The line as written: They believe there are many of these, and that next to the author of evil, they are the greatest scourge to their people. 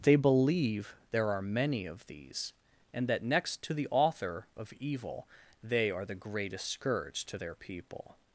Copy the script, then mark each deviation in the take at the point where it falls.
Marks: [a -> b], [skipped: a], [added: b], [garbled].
They believe there are many of these, and that next to the author of evil, they are the greatest scourge to their people.